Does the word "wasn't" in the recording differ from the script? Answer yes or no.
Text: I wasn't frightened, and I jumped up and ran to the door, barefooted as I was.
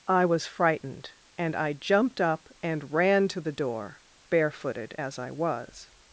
yes